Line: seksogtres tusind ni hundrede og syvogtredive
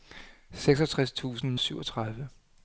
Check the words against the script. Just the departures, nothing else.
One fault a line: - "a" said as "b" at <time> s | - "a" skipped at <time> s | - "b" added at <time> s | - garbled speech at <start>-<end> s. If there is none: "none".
- "ni hundrede og" skipped at 1.6 s